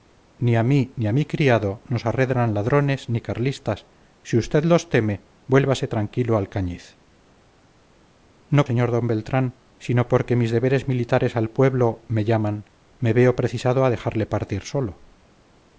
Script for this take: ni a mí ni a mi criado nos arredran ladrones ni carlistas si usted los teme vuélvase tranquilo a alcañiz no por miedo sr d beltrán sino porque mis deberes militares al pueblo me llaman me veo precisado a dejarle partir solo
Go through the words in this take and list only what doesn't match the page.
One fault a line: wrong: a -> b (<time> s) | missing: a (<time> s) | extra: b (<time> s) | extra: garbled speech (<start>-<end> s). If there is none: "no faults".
missing: por miedo (8.6 s)